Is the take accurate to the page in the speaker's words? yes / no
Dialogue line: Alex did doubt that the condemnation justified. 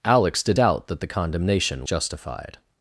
yes